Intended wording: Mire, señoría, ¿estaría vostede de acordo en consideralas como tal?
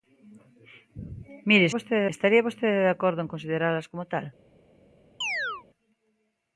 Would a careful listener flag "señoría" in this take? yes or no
yes